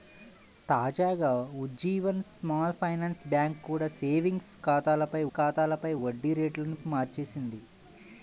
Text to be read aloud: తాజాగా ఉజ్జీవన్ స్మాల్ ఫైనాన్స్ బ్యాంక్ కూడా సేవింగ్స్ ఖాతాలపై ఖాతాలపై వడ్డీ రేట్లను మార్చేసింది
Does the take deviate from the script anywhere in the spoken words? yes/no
no